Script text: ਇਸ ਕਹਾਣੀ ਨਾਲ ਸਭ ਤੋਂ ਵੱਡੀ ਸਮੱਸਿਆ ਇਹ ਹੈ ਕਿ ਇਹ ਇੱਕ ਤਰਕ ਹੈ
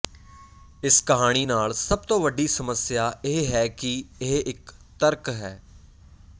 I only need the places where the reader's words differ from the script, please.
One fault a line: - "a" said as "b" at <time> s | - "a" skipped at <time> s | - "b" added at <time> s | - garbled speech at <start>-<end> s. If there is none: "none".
none